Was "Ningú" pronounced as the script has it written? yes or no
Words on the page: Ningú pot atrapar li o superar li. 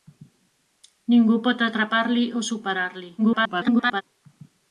yes